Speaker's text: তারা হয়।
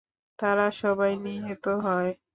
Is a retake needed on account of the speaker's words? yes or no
yes